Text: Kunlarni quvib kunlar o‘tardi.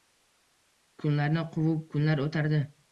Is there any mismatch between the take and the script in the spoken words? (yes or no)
no